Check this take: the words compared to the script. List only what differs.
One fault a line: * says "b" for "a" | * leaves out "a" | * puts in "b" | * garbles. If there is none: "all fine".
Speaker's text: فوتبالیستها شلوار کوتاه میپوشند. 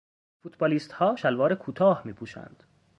all fine